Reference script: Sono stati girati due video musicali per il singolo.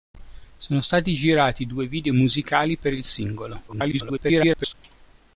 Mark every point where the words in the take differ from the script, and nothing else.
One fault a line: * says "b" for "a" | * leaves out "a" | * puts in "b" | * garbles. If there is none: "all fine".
* garbles